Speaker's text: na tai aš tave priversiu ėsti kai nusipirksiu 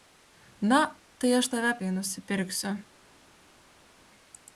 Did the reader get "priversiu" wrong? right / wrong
wrong